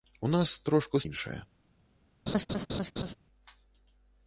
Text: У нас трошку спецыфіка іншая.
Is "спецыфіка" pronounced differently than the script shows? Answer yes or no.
yes